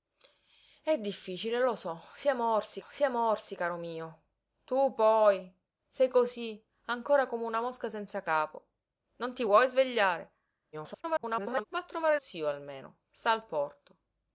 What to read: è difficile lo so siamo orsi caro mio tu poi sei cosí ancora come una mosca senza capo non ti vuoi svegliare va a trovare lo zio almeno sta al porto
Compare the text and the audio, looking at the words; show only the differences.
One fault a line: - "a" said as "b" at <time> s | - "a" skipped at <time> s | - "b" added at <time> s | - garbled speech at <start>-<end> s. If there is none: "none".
- "siamo orsi" added at 2.9 s
- garbled speech at 10.7-11.6 s
- "lo" skipped at 12.2 s